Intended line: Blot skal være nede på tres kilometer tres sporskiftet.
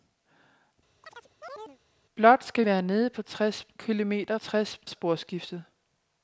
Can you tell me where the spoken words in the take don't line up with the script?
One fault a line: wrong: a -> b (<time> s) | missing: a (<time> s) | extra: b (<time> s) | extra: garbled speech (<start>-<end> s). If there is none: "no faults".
no faults